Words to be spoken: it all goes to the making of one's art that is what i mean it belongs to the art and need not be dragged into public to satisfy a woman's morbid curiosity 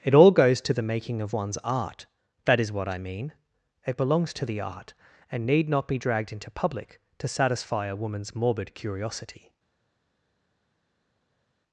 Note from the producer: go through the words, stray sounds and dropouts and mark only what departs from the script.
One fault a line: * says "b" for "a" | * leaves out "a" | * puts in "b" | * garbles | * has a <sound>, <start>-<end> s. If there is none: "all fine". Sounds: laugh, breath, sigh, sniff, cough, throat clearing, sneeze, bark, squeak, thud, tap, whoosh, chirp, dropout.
all fine